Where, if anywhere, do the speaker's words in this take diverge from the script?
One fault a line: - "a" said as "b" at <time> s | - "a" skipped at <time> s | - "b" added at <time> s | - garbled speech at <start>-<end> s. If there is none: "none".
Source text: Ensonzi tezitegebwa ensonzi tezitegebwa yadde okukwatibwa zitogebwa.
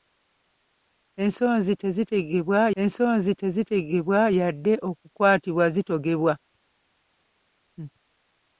none